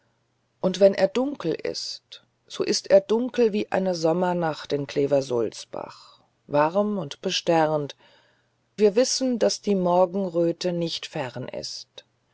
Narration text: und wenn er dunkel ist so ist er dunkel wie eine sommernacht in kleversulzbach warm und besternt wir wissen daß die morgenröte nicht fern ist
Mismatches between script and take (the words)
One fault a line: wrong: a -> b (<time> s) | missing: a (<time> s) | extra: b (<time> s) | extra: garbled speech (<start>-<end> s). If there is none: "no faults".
no faults